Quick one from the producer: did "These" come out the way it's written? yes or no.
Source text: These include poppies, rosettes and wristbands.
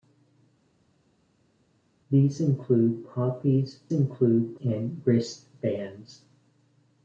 yes